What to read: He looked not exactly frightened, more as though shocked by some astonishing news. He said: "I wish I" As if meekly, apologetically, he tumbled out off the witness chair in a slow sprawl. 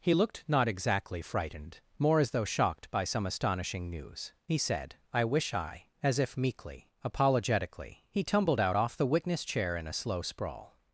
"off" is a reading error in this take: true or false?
false